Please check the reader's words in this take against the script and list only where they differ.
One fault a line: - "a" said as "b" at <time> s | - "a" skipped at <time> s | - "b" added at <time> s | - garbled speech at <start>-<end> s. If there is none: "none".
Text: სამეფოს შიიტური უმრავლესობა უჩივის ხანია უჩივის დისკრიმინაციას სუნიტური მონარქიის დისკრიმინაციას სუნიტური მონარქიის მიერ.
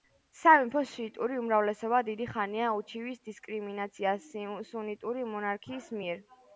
- "უჩივის" said as "დიდი" at 2.1 s
- "დისკრიმინაციას სუნიტური მონარქიის" skipped at 6.0 s